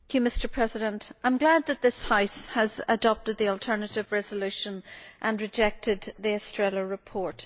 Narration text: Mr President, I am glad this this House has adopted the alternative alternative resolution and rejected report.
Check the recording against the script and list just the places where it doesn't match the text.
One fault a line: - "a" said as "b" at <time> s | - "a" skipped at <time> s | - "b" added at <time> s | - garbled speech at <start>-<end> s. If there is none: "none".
- "this" said as "that" at 1.7 s
- "alternative" skipped at 4.1 s
- "the Estrela" added at 6.2 s